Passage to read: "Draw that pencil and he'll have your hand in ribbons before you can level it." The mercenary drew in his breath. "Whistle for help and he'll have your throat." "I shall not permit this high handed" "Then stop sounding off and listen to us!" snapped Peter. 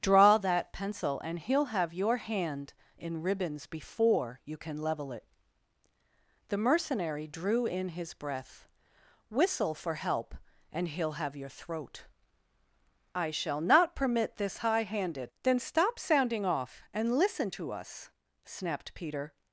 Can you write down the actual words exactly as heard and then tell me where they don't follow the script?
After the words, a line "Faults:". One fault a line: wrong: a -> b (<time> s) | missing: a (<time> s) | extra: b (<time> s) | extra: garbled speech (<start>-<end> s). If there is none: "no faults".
"Draw that pencil and he'll have your hand in ribbons before you can level it." The mercenary drew in his breath. "Whistle for help and he'll have your throat." "I shall not permit this high handed" "Then stop sounding off and listen to us!" snapped Peter.
Faults:
no faults